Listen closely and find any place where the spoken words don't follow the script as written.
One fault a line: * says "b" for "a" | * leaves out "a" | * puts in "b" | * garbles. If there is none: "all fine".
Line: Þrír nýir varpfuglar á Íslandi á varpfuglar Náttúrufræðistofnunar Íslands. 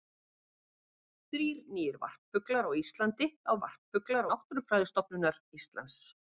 all fine